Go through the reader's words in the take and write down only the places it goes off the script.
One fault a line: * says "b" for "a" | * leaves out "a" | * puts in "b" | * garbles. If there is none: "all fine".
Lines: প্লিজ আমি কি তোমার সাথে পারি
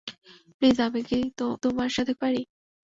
all fine